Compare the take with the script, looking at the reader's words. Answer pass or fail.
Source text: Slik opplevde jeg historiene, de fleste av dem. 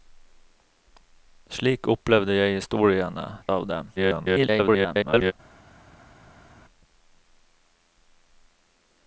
fail